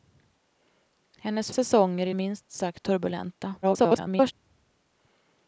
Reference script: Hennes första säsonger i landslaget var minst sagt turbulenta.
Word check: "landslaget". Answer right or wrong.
wrong